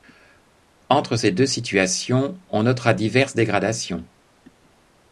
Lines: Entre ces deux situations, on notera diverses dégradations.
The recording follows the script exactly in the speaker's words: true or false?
true